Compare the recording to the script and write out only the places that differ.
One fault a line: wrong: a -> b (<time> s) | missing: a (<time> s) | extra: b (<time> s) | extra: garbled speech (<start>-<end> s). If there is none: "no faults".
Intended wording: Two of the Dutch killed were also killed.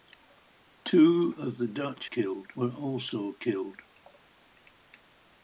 no faults